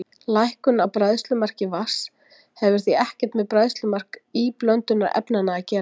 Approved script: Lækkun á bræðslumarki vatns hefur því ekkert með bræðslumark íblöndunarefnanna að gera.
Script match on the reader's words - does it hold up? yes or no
yes